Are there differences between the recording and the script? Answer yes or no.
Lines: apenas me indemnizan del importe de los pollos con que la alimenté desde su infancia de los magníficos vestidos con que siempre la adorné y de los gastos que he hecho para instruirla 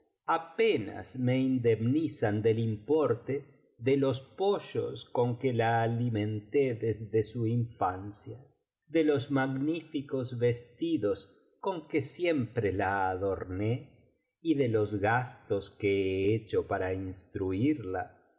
no